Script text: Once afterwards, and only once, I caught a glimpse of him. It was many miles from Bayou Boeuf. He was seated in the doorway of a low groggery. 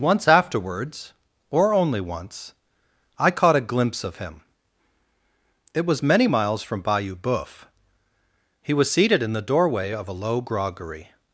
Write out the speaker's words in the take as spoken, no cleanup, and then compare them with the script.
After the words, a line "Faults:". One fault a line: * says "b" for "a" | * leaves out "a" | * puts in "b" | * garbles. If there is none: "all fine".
Once afterwards, or only once, I caught a glimpse of him. It was many miles from Bayou Boeuf. He was seated in the doorway of a low groggery.
Faults:
* says "or" for "and"